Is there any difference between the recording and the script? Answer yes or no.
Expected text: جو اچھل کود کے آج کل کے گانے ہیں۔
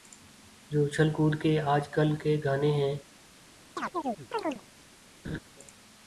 no